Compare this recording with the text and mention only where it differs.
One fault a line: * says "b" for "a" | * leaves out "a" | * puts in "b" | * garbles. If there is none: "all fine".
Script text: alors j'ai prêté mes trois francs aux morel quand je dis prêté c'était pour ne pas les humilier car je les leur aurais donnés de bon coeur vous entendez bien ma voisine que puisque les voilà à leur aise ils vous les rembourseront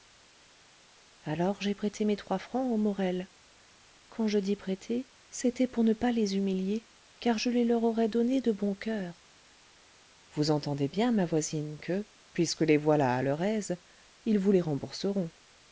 all fine